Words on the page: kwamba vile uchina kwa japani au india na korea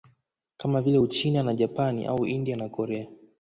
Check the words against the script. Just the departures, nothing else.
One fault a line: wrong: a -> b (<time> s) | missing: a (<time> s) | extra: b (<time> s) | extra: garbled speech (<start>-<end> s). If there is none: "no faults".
wrong: kwamba -> kama (0.6 s)
wrong: kwa -> na (1.4 s)